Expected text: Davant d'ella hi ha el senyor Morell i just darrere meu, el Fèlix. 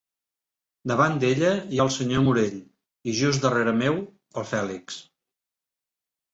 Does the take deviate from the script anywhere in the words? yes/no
no